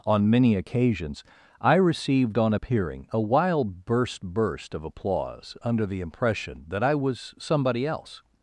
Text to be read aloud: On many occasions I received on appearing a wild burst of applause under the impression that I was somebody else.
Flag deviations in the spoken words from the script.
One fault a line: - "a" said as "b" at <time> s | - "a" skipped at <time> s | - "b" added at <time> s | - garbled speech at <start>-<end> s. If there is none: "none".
- "burst" added at 4.2 s